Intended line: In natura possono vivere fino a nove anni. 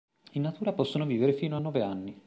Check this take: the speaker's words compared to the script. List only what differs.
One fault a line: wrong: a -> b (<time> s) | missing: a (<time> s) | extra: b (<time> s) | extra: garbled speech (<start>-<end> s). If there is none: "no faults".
no faults